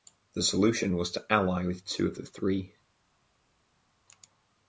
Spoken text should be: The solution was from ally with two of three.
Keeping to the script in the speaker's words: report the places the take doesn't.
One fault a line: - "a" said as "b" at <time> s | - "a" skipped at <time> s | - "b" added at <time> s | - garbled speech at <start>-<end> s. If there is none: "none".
- "from" said as "to" at 1.1 s
- "the" added at 2.2 s